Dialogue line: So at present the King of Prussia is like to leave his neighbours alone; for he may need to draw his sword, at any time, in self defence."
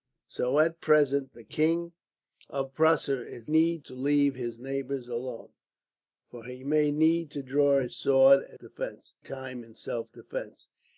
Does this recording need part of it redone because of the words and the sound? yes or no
yes